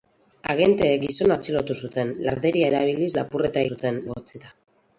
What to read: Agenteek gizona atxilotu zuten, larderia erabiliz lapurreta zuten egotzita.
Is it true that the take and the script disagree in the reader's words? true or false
false